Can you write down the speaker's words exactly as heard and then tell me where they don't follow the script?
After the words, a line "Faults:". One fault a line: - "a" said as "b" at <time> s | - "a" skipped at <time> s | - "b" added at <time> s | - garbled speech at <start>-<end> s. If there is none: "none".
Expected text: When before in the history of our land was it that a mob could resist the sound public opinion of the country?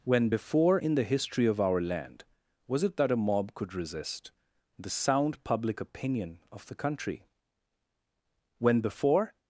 When before in the history of our land was it that a mob could resist the sound public opinion of the country? When before
Faults:
- "When before" added at 8.6 s